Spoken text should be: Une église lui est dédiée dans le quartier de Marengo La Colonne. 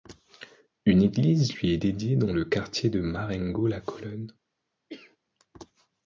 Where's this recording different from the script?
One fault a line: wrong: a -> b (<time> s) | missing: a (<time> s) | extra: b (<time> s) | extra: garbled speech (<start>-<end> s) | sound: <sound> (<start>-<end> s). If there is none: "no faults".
sound: cough (4.9-5.2 s)